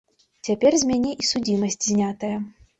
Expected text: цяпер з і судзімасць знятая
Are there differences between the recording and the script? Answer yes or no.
yes